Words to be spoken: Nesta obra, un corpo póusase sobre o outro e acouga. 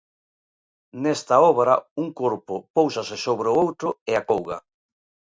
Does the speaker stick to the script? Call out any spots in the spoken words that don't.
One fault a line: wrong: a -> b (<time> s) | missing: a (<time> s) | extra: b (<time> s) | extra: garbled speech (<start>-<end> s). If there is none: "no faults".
no faults